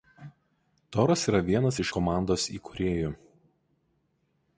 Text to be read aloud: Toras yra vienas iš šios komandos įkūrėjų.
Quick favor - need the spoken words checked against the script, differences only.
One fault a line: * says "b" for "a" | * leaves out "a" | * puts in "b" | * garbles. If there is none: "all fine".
* leaves out "šios"